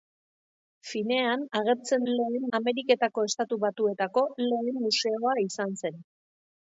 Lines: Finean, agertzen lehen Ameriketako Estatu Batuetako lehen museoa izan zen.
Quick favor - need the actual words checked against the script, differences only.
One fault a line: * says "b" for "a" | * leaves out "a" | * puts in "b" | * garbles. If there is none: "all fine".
all fine